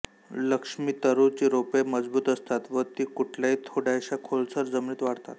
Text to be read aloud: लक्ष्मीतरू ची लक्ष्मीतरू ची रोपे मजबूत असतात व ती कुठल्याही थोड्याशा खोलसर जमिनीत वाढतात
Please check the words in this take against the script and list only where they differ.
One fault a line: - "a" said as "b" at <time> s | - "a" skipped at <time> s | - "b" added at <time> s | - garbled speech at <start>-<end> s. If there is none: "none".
- "लक्ष्मीतरू ची" skipped at 1.5 s